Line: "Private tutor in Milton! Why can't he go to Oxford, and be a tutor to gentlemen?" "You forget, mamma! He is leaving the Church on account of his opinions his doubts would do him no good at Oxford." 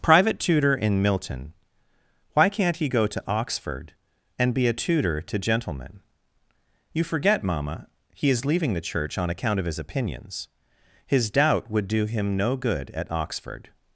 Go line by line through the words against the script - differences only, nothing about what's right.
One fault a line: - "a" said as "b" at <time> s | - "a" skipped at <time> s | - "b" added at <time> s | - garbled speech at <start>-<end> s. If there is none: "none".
- "doubts" said as "doubt" at 11.3 s